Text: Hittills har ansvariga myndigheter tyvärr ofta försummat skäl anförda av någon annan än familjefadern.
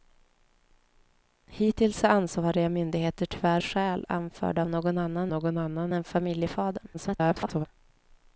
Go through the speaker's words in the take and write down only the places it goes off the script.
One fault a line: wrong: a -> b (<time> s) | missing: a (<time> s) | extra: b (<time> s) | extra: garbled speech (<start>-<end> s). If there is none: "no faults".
missing: ofta försummat (3.6 s)
extra: någon annan (5.3 s)
extra: garbled speech (6.9-7.7 s)